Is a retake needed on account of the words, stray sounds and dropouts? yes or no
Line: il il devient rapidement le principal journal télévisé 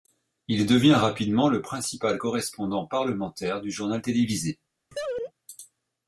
yes